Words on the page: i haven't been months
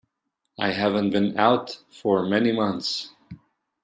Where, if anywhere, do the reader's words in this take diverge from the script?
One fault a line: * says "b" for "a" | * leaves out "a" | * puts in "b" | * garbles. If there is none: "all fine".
* puts in "out for many"